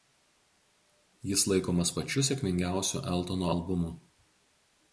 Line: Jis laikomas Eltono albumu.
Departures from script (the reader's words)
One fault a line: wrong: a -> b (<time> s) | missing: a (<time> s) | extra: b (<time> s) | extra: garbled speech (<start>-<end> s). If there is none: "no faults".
extra: pačiu sėkmingiausiu (2.0 s)